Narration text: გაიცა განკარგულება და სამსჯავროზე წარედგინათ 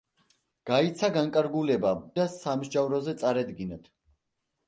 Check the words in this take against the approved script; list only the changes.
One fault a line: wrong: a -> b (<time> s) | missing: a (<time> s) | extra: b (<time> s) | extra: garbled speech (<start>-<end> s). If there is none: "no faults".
no faults